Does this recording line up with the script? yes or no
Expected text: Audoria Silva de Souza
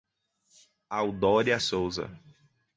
no